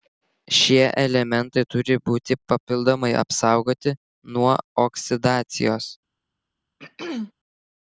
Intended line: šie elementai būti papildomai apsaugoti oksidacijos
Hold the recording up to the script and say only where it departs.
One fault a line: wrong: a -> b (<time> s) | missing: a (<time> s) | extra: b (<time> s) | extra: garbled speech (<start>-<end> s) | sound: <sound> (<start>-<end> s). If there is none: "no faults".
extra: turi (1.7 s)
extra: nuo (4.4 s)
sound: throat clearing (6.8-7.3 s)